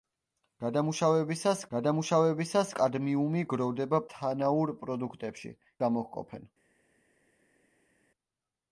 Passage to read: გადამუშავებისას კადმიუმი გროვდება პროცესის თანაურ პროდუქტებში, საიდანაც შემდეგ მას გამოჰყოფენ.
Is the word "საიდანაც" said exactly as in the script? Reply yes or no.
no